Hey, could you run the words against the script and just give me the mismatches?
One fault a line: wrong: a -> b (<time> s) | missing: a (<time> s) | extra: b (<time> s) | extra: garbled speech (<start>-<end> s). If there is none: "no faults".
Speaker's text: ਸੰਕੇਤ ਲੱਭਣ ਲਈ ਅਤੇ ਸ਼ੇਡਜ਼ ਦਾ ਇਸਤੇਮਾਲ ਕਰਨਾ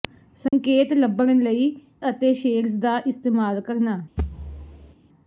no faults